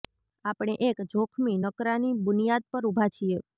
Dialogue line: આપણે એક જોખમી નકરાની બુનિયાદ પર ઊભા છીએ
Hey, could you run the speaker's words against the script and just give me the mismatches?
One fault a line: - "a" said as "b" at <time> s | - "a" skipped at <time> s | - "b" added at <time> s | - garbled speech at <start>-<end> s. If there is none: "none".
none